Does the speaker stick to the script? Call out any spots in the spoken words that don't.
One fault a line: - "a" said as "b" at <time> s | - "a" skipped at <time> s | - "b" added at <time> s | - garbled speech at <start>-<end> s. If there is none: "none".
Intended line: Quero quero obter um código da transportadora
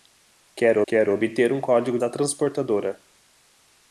none